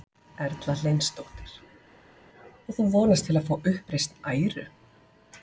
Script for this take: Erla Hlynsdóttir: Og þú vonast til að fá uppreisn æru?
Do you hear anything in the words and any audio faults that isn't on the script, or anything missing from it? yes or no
no